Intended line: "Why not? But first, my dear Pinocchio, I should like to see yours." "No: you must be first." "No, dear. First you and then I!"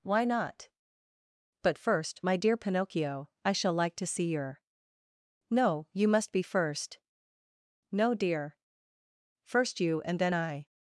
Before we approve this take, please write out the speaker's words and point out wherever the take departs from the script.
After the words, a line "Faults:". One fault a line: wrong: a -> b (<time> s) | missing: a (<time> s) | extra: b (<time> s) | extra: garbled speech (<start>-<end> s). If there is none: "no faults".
"Why not? But first, my dear Pinocchio, I shall like to see your." "No: you must be first." "No, dear. First you and then I!"
Faults:
wrong: should -> shall (3.5 s)
wrong: yours -> your (4.3 s)